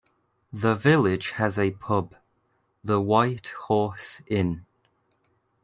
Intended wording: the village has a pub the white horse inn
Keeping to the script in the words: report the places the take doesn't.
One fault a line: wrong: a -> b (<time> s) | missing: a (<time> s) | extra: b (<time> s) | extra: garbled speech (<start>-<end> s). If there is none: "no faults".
no faults